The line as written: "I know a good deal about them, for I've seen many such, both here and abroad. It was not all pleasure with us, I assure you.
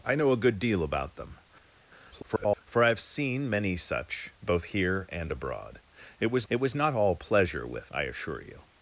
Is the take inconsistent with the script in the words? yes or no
yes